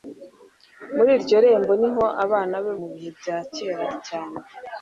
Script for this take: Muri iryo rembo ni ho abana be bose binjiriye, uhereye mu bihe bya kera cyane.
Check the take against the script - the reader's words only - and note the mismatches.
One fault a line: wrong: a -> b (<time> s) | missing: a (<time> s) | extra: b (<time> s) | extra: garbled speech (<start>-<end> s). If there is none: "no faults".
missing: bose binjiriye uhereye (2.7 s)